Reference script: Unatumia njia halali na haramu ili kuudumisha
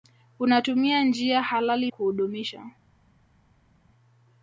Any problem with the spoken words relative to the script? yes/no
yes